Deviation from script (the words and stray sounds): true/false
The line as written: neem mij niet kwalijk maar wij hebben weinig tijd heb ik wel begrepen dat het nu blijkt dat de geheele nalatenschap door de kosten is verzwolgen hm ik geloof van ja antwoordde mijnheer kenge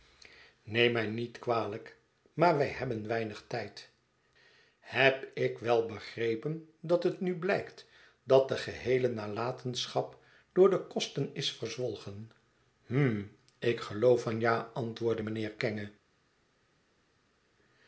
false